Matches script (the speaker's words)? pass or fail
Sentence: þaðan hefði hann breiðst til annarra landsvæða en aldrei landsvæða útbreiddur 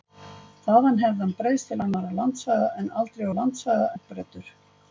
pass